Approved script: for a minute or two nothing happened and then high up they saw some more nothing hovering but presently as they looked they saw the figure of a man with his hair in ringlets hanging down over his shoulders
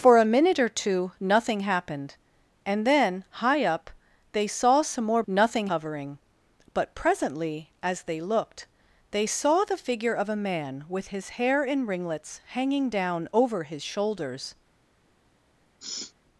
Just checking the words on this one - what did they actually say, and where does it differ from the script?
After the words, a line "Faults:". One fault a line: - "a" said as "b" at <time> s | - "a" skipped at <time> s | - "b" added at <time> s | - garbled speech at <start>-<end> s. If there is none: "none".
for a minute or two nothing happened and then high up they saw some more nothing hovering but presently as they looked they saw the figure of a man with his hair in ringlets hanging down over his shoulders
Faults:
none